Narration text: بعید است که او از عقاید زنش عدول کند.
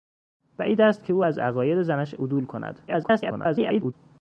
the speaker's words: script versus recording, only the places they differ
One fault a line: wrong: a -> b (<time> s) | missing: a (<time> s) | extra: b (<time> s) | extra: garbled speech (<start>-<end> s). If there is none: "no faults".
extra: garbled speech (2.9-3.9 s)